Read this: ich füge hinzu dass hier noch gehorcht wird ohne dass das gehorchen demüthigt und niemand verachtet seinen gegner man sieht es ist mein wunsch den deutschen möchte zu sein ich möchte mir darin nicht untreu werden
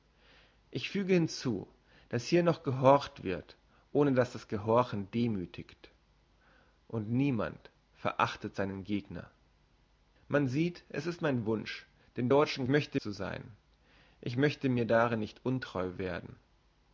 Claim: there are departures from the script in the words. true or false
false